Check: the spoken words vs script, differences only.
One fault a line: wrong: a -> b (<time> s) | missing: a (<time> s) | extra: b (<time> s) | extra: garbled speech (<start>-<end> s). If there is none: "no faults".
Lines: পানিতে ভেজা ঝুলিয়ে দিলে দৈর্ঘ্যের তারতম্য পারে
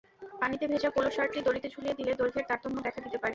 extra: পোলো শার্টটি দড়িতে (0.9 s)
extra: দেখা দিতে (2.8 s)